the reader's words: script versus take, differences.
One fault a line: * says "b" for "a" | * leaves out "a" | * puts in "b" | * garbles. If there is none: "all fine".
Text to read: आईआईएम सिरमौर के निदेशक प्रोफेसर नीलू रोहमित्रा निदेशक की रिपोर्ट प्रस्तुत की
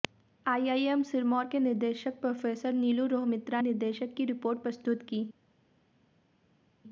all fine